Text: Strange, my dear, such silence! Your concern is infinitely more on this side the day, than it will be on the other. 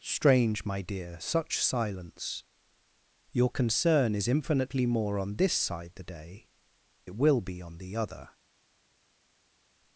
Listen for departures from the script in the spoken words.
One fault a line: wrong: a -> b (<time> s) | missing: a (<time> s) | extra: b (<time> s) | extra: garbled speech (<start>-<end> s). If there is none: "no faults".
missing: than (6.5 s)